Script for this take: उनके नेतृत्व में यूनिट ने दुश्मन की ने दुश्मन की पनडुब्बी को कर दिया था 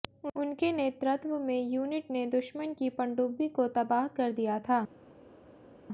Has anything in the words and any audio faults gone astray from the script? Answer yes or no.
yes